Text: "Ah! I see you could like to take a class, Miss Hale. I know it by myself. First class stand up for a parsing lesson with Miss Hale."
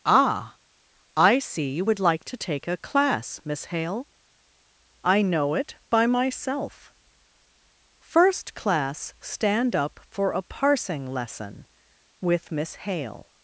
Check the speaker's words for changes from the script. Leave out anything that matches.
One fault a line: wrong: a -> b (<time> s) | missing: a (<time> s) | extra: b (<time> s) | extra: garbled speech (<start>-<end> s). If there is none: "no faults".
wrong: could -> would (1.8 s)